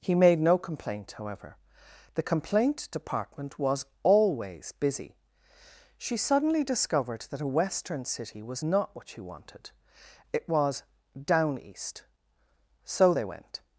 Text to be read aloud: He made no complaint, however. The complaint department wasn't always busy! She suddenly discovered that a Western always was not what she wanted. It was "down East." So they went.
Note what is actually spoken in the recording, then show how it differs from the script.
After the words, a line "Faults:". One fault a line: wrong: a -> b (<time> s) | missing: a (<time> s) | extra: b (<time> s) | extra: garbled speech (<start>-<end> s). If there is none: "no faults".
He made no complaint, however. The complaint department was always busy! She suddenly discovered that a Western city was not what she wanted. It was "down East." So they went.
Faults:
wrong: wasn't -> was (3.6 s)
wrong: always -> city (8.1 s)